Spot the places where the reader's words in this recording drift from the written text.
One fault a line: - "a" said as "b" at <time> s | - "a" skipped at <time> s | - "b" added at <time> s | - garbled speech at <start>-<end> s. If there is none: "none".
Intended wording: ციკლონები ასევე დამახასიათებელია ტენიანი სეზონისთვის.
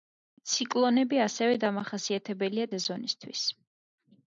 - "ტენიანი" skipped at 2.7 s